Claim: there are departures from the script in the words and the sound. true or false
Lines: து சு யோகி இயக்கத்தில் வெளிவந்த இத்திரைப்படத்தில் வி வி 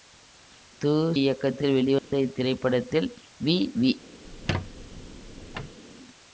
true